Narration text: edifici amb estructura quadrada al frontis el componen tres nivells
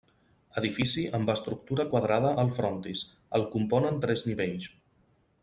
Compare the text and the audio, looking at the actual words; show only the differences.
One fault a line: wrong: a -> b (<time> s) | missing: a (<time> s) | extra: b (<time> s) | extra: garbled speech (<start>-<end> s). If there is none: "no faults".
no faults